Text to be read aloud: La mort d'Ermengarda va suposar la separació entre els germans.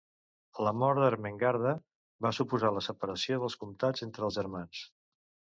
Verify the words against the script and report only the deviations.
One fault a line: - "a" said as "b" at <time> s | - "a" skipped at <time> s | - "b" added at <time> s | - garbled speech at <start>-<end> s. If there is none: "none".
- "dels comtats" added at 3.4 s